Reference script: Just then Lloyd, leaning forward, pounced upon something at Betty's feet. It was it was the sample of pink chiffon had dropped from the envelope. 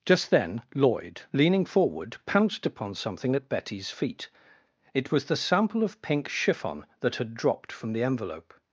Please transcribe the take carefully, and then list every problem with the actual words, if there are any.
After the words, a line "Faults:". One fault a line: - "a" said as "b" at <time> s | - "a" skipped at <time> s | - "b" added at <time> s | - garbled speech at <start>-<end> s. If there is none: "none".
Just then Lloyd, leaning forward, pounced upon something at Betty's feet. It was the sample of pink chiffon that had dropped from the envelope.
Faults:
- "it was" skipped at 5.2 s
- "that" added at 7.0 s